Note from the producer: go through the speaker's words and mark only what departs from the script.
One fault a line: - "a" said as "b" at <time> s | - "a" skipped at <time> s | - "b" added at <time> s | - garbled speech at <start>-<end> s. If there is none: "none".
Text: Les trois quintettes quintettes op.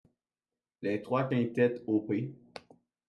- "quintettes" skipped at 1.8 s